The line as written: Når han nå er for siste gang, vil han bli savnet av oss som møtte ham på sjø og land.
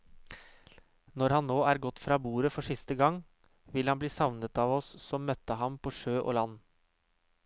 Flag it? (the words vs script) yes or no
yes